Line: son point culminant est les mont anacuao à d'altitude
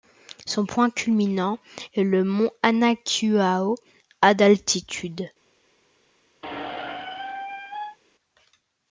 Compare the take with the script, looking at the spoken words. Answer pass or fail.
fail